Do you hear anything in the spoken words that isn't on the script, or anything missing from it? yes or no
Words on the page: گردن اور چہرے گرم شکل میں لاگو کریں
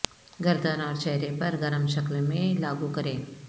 yes